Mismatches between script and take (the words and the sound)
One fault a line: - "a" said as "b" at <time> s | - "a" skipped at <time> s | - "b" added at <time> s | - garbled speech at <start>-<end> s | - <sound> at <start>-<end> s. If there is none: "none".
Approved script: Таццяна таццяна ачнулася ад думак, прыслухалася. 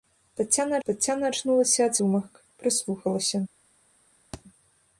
- thud at 4.3-4.4 s